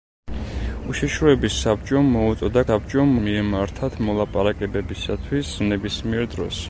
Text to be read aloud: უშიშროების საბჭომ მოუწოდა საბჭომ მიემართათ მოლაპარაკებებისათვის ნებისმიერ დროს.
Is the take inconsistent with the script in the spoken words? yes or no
no